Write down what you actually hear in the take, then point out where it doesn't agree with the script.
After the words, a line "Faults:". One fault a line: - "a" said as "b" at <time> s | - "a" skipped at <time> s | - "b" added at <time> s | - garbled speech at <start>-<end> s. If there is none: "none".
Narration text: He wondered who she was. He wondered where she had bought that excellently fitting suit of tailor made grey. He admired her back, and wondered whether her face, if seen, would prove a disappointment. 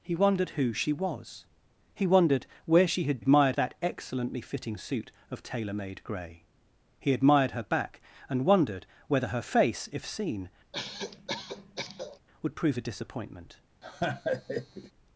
He wondered who she was. He wondered where she had admired that excellently fitting suit of tailor made grey. He admired her back, and wondered whether her face, if seen, would prove a disappointment.
Faults:
- "bought" said as "admired" at 3.2 s